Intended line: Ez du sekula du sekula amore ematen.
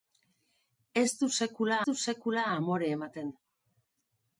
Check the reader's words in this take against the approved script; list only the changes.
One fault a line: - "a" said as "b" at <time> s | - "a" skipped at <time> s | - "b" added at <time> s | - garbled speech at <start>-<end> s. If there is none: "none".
none